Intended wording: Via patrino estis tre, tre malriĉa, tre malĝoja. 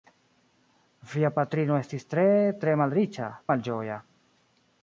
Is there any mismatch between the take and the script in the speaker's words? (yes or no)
yes